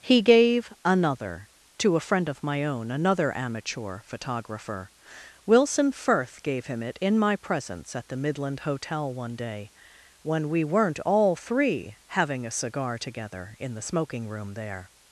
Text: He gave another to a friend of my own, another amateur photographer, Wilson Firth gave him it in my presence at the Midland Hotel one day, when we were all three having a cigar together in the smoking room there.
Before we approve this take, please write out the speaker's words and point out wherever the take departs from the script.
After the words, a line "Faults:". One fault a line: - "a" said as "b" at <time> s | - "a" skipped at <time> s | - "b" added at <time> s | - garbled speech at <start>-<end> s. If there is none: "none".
He gave another to a friend of my own, another amateur photographer, Wilson Firth gave him it in my presence at the Midland Hotel one day, when we weren't all three having a cigar together in the smoking room there.
Faults:
- "were" said as "weren't" at 10.6 s